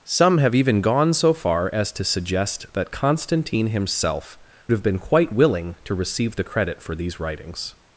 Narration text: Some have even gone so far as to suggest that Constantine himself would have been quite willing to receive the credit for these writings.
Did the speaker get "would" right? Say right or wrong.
wrong